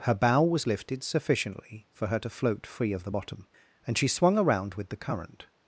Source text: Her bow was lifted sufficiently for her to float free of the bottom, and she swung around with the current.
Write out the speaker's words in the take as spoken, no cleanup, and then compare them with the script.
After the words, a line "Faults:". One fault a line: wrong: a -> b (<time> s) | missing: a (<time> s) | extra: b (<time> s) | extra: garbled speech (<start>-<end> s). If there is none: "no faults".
Her bow was lifted sufficiently for her to float free of the bottom, and she swung around with the current.
Faults:
no faults